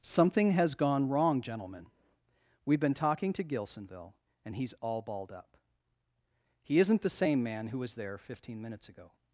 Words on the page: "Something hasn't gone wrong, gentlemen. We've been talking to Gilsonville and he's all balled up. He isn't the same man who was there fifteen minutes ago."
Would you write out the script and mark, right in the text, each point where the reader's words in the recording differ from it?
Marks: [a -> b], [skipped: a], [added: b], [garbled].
"Something [hasn't -> has] gone wrong, gentlemen. We've been talking to Gilsonville and he's all balled up. He isn't the same man who was there fifteen minutes ago."